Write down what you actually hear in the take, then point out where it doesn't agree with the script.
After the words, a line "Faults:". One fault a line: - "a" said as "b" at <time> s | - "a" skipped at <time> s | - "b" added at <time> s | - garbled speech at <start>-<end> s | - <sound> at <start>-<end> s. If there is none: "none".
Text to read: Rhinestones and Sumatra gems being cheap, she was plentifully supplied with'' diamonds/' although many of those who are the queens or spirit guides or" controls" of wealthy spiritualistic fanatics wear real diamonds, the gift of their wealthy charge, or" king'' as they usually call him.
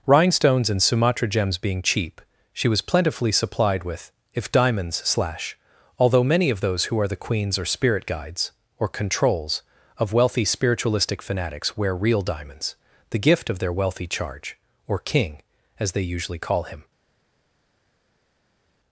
Rhinestones and Sumatra gems being cheap, she was plentifully supplied with'' if diamonds/' slash although many of those who are the queens or spirit guides or" controls" of wealthy spiritualistic fanatics wear real diamonds, the gift of their wealthy charge, or" king'' as they usually call him.
Faults:
- "if" added at 4.3 s
- "slash" added at 5.0 s